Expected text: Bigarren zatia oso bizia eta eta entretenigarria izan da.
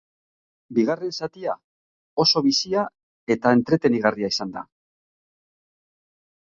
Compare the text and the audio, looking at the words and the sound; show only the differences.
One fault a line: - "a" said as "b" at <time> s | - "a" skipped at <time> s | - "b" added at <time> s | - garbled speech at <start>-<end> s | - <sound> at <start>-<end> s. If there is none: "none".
- "eta" skipped at 3.5 s